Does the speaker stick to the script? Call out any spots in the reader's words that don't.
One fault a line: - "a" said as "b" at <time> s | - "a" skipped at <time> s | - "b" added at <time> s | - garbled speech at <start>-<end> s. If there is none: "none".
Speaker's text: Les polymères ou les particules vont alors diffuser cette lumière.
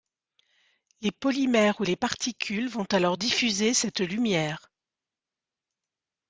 none